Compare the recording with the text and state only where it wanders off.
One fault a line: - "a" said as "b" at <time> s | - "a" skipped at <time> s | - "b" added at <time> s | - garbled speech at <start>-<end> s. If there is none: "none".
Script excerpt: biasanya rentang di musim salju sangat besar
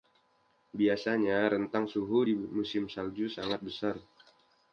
- "suhu" added at 1.9 s